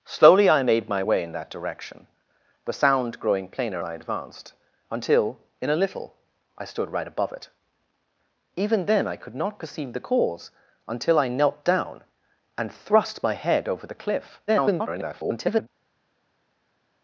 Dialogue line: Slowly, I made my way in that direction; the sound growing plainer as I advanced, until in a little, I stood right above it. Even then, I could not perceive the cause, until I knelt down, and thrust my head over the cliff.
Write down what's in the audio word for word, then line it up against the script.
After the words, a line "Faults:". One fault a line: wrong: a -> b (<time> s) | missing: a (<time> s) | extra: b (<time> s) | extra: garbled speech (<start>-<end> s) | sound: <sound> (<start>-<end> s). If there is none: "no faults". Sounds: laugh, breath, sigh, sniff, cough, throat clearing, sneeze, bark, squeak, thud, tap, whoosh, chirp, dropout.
Slowly, I made my way in that direction; the sound growing plainer I advanced, until in a little, I stood right above it. Even then, I could not perceive the cause, until I knelt down, and thrust my head over the cliff. [garbled]
Faults:
missing: as (3.8 s)
extra: garbled speech (14.5-15.7 s)